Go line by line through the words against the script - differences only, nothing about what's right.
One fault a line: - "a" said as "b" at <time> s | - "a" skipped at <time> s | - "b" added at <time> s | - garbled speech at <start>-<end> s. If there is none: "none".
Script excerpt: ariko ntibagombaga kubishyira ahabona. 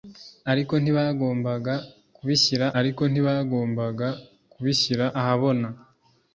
- "ariko ntibagombaga kubishyira" added at 2.8 s